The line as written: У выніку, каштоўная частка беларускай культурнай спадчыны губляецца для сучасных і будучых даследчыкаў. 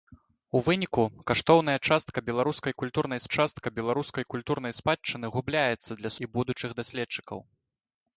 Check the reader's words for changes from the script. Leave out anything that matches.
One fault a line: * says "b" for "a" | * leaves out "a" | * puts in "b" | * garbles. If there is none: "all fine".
* puts in "частка беларускай культурнай"
* leaves out "сучасных"